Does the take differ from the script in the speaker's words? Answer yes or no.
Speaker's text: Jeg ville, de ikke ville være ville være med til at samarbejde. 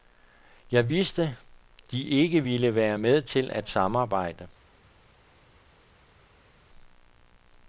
yes